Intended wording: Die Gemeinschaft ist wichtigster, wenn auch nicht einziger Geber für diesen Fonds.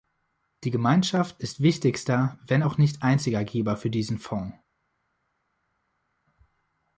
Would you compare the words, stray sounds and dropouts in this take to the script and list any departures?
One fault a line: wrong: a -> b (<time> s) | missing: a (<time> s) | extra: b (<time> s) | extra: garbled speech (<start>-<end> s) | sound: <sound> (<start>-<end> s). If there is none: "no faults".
no faults